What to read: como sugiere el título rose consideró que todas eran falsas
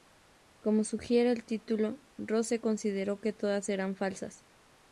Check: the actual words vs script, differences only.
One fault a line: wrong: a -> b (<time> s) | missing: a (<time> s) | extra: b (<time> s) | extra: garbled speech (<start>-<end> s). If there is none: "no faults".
no faults